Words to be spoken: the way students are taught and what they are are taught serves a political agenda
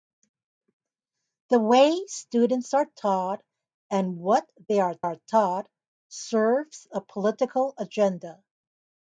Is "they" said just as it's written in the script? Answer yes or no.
yes